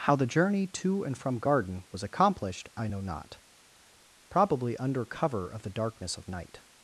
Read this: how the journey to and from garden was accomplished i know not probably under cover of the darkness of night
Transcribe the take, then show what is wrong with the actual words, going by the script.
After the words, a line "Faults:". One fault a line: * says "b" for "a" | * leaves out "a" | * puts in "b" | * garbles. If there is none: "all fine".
how the journey to and from garden was accomplished i know not probably under cover of the darkness of night
Faults:
all fine